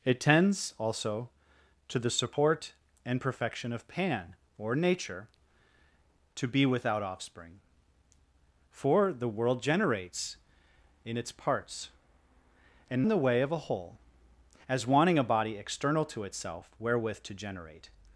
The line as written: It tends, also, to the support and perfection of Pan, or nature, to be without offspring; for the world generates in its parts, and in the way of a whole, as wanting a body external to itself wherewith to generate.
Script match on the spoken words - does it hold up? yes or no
yes